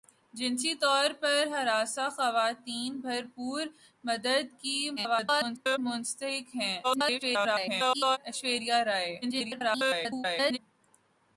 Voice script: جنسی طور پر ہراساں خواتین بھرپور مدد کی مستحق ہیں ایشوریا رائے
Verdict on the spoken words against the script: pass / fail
fail